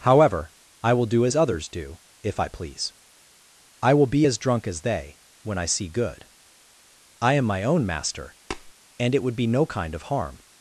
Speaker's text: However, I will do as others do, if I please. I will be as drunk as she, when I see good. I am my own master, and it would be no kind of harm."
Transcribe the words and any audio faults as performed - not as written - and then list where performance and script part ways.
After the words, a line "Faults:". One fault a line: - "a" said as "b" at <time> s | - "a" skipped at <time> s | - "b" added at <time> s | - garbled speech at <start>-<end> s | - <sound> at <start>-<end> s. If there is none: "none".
However, I will do as others do, if I please. I will be as drunk as they, when I see good. I am my own master, and it would be no kind of harm."
Faults:
- "she" said as "they" at 4.8 s
- tap at 8.5-8.7 s